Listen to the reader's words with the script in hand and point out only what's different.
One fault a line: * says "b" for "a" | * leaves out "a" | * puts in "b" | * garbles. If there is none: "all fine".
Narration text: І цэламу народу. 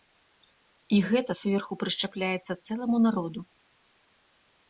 * puts in "гэта зверху прышчапляецца"